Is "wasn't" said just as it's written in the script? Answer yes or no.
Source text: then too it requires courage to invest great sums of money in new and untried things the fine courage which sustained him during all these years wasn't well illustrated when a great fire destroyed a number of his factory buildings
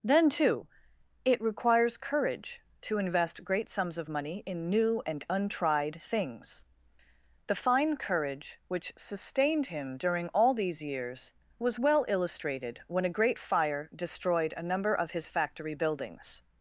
no